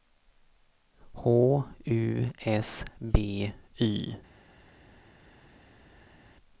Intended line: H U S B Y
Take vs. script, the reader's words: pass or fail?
pass